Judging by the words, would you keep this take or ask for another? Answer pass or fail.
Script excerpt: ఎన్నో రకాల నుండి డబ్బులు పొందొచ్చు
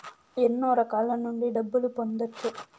pass